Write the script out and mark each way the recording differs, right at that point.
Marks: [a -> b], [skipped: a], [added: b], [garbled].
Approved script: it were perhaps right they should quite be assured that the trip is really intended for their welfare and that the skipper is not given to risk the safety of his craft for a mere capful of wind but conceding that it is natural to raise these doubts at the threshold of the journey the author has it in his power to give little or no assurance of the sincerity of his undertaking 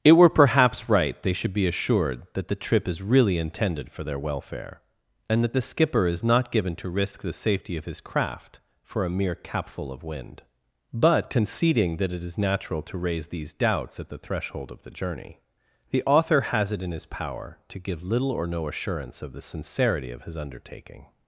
it were perhaps right they should [skipped: quite] be assured that the trip is really intended for their welfare and that the skipper is not given to risk the safety of his craft for a mere capful of wind but conceding that it is natural to raise these doubts at the threshold of the journey the author has it in his power to give little or no assurance of the sincerity of his undertaking